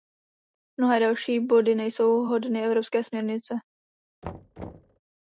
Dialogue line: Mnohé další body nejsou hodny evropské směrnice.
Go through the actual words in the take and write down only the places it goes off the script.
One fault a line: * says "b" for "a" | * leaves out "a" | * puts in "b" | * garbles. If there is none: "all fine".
all fine